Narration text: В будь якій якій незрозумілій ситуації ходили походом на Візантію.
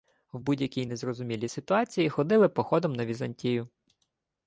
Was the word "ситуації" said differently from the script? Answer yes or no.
no